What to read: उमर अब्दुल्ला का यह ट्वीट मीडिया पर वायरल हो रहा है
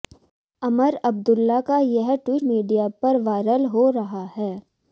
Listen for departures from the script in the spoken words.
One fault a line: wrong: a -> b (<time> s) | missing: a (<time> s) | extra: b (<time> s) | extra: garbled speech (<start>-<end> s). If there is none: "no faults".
no faults